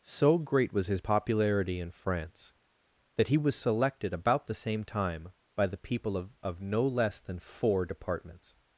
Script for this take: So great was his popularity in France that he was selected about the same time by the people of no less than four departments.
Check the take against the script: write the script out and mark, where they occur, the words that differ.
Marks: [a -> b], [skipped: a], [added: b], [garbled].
So great was his popularity in France that he was selected about the same time by the people of [added: of] no less than four departments.